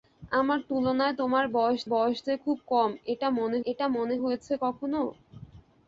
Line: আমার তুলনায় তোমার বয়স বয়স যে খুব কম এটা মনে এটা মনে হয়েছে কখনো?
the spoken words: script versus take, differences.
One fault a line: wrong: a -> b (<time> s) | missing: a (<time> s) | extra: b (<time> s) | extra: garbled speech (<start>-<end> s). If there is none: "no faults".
no faults